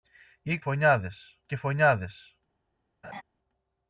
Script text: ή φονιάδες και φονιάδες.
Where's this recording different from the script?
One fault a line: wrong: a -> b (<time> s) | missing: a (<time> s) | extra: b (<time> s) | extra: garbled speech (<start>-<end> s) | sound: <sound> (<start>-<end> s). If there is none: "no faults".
sound: laugh (3.0-3.2 s)